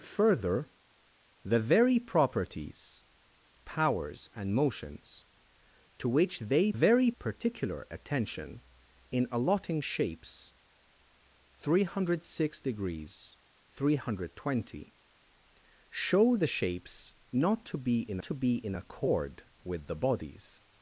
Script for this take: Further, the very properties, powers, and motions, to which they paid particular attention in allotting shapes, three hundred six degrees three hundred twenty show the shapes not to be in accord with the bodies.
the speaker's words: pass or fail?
fail